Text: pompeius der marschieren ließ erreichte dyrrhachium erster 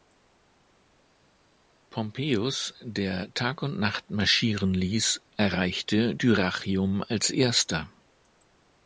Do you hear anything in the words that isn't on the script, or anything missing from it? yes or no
yes